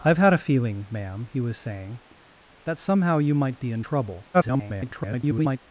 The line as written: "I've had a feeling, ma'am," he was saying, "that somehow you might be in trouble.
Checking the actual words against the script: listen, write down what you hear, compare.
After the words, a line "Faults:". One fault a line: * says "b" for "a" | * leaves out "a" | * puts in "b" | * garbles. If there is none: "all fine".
"I've had a feeling, ma'am," he was saying, "that somehow you might be in trouble. [garbled]
Faults:
* garbles